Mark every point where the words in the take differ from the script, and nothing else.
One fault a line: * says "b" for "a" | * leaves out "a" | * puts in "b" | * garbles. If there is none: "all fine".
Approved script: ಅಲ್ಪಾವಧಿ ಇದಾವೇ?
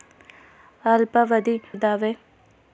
all fine